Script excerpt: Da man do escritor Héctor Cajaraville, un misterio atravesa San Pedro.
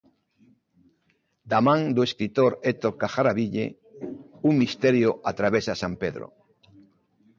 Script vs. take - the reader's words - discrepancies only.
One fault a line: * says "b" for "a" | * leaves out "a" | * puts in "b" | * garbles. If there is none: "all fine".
all fine